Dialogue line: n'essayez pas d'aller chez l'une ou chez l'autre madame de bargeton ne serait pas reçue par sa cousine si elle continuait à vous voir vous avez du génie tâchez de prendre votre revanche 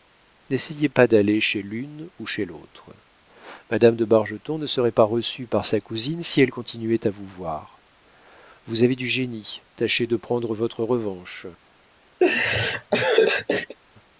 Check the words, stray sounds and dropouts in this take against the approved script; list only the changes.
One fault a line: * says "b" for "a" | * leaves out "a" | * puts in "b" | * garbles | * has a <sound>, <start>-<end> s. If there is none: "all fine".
* has a laugh, 12.2-13.8 s